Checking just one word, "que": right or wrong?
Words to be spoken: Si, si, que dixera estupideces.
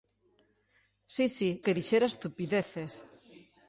right